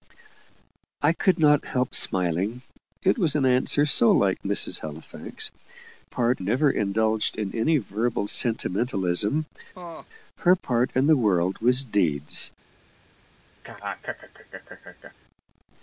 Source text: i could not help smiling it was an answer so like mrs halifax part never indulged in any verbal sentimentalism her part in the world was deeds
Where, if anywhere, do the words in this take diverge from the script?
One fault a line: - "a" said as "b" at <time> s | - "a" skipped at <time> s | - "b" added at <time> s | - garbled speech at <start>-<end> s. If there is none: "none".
none